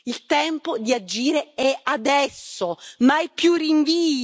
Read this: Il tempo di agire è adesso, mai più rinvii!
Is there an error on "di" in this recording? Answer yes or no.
no